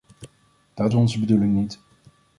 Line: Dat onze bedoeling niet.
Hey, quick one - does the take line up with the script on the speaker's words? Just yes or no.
yes